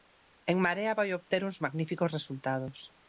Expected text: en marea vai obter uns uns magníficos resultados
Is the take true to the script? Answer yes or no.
no